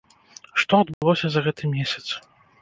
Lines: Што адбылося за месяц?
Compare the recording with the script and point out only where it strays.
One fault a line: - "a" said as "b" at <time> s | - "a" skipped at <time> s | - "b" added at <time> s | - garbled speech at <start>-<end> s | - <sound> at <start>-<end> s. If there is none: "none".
- dropout at 0.9-1.0 s
- "гэты" added at 1.5 s